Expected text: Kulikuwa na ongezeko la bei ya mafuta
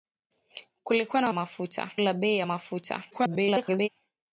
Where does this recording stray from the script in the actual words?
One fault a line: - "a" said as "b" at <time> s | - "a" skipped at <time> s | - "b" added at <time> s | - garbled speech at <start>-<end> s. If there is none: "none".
- "ongezeko" said as "mafuta" at 1.3 s
- garbled speech at 3.1-3.9 s